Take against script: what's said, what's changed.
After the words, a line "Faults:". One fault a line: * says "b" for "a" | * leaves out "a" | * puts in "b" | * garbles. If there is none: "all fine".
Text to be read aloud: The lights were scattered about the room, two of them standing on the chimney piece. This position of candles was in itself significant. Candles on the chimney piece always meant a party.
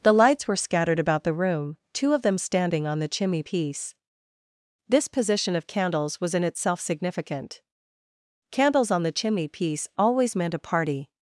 The lights were scattered about the room, two of them standing on the chimney piece. This position of candles was in itself significant. Candles on the chimney piece always meant a party.
Faults:
all fine